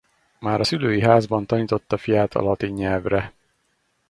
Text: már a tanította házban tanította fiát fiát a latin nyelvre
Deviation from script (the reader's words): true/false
true